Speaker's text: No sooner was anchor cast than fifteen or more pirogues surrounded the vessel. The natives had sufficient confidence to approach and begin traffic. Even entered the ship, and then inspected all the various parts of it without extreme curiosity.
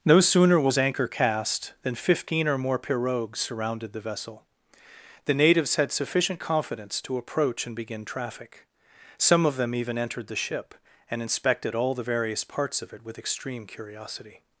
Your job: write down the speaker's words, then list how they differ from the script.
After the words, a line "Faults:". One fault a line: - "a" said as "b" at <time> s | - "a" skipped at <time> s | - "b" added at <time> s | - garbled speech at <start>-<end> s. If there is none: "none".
No sooner was anchor cast than fifteen or more pirogues surrounded the vessel. The natives had sufficient confidence to approach and begin traffic. Some of them even entered the ship, and inspected all the various parts of it with extreme curiosity.
Faults:
- "Some of them" added at 9.2 s
- "then" skipped at 11.2 s
- "without" said as "with" at 13.1 s